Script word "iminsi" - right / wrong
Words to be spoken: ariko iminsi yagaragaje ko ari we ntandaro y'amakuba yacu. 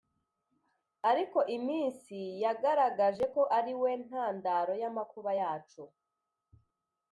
right